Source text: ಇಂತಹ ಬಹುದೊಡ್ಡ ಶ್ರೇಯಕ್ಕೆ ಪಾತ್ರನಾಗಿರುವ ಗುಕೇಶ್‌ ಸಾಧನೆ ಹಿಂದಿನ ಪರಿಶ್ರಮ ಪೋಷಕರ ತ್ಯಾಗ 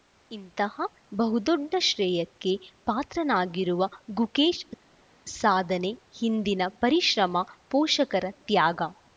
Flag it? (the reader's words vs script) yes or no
no